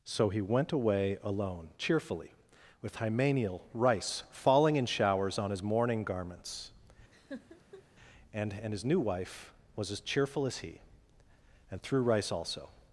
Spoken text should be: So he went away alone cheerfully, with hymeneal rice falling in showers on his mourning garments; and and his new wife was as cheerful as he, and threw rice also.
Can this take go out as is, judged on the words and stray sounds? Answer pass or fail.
fail